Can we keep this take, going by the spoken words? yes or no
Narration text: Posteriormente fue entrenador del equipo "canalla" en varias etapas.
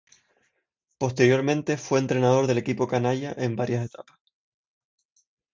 yes